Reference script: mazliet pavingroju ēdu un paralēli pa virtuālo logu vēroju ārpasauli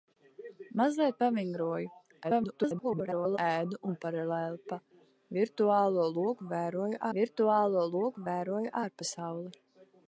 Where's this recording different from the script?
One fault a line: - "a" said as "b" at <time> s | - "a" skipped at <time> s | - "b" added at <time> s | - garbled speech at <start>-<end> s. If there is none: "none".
- garbled speech at 2.2-3.4 s
- "virtuālo logu vēroju" added at 7.2 s